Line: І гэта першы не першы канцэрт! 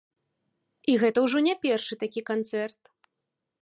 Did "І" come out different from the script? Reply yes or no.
no